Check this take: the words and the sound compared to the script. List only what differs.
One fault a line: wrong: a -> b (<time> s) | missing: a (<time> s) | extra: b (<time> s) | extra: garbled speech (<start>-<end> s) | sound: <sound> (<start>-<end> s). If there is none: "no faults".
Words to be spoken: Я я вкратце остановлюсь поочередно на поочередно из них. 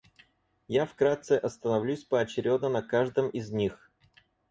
missing: я (0.9 s)
wrong: поочередно -> каждом (2.8 s)